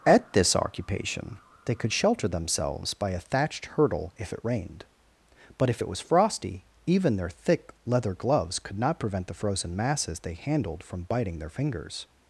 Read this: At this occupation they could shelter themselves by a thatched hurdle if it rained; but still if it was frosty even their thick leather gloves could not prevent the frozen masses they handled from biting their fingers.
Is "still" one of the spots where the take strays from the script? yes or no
yes